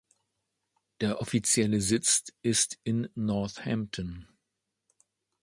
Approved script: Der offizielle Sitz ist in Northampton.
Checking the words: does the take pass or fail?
pass